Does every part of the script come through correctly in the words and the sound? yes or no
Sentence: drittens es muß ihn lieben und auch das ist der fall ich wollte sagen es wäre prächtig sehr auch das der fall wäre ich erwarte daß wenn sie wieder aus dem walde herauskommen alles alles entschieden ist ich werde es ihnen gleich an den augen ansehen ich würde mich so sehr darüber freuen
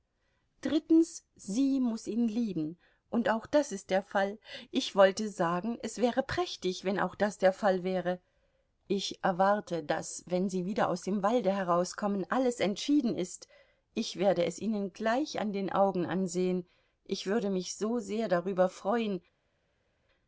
no